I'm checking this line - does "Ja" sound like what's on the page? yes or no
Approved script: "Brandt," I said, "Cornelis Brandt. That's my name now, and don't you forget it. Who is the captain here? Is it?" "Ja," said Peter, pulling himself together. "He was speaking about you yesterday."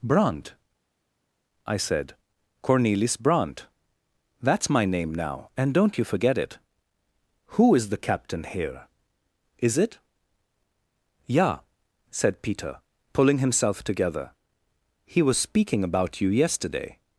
yes